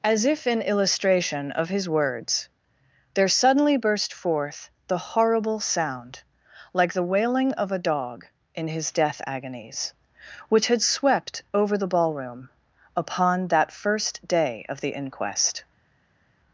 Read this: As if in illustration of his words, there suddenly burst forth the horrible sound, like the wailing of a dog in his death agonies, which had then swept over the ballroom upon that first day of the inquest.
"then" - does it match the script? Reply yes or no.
no